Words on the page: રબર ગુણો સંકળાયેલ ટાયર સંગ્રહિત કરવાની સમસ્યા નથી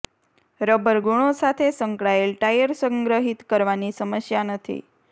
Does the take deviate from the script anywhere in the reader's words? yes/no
yes